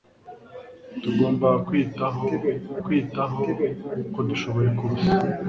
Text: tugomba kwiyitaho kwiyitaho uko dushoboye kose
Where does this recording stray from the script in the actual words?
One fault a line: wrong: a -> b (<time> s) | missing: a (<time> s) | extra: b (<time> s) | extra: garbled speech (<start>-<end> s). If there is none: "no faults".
no faults